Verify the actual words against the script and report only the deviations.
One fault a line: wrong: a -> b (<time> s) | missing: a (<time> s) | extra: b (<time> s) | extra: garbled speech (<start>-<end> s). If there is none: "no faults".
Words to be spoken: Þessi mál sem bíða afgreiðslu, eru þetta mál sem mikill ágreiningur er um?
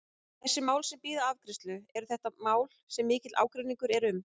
no faults